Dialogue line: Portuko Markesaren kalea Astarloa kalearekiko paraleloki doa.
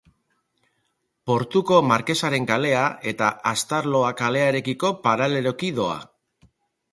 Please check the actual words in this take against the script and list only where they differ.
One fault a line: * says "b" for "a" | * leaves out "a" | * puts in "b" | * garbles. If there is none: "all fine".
* puts in "eta"